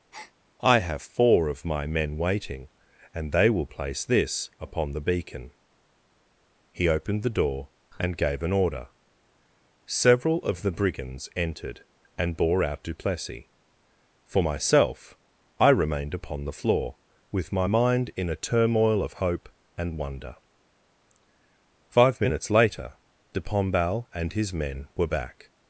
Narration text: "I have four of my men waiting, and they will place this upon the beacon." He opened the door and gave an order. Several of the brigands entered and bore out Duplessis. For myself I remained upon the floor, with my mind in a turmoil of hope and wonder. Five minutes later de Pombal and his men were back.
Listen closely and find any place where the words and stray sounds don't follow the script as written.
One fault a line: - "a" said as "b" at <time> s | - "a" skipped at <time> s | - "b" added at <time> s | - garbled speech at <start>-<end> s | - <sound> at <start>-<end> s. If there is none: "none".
- breath at 0.1-0.3 s